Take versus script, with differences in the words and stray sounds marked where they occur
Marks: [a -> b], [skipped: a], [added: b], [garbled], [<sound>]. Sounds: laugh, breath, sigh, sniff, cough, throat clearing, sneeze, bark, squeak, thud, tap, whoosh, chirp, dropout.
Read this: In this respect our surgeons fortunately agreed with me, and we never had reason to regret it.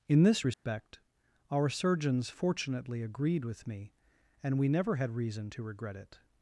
In this respect [dropout] our surgeons fortunately agreed with me, and we never had reason to regret it.